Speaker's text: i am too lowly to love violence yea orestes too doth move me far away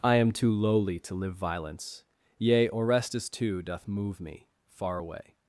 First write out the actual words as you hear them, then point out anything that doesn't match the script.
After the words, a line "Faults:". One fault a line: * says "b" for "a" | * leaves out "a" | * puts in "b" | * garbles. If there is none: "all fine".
i am too lowly to live violence yea orestes too doth move me far away
Faults:
* says "live" for "love"